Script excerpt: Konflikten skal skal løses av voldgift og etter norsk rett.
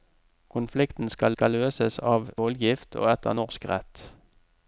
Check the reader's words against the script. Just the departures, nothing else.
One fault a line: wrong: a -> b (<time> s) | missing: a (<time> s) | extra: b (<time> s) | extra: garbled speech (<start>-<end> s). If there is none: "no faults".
no faults